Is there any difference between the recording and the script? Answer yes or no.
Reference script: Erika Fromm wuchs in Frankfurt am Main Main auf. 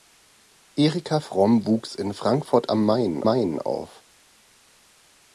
no